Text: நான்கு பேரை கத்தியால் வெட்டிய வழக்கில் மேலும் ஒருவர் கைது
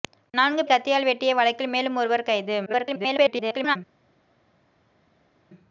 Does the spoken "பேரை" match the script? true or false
false